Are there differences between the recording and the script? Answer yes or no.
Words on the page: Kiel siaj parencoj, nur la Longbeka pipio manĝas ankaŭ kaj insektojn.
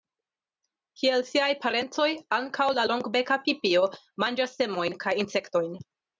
yes